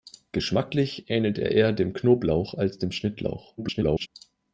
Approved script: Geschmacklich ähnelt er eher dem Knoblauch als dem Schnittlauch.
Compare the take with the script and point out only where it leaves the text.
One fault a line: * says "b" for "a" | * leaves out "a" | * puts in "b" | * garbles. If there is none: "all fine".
* garbles